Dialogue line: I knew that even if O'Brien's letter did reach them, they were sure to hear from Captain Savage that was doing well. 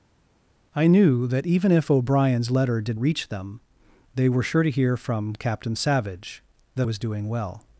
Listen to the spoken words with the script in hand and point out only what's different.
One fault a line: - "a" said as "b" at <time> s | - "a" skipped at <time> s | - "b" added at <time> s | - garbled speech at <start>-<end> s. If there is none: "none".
none